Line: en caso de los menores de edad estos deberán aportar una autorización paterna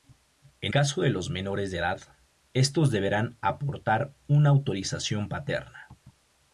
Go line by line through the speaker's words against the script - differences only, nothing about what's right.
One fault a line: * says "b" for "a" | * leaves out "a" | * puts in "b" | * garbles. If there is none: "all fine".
all fine